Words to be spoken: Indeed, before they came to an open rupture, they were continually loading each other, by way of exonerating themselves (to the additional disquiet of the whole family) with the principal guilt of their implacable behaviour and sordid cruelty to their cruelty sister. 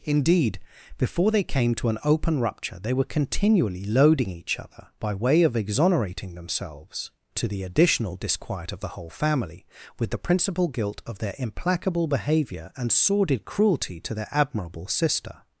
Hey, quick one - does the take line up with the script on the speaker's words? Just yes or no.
no